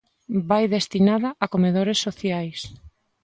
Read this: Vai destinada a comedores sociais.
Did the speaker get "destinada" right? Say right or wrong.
right